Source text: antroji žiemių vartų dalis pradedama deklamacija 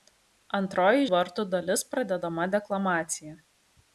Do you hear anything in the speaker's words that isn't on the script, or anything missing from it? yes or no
yes